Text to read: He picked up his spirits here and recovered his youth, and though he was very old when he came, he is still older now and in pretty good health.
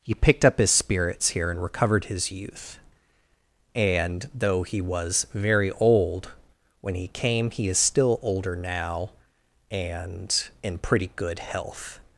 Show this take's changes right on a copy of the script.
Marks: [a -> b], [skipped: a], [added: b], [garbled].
He picked up his spirits here and recovered his youth, and though he was very old when he came, he is still older now and in pretty good health.